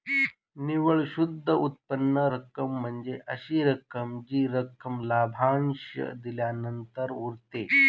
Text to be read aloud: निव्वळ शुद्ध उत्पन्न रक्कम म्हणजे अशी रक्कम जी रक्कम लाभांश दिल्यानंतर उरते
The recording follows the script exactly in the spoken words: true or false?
true